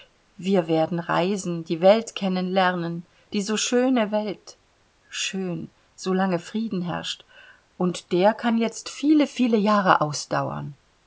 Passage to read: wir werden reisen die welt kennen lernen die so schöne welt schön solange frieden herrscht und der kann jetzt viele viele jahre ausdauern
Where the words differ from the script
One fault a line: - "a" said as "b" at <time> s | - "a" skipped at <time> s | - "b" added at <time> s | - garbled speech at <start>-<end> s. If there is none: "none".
none